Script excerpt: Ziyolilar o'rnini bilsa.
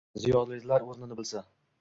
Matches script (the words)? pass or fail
pass